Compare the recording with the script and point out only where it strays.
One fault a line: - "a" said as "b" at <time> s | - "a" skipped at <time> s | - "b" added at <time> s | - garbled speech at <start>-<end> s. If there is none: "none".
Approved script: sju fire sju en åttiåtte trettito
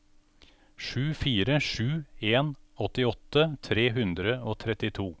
- "tre hundre og" added at 3.7 s